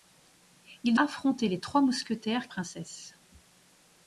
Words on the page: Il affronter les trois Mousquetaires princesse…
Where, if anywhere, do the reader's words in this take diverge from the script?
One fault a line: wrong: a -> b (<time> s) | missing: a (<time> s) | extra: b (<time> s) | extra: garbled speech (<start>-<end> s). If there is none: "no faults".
no faults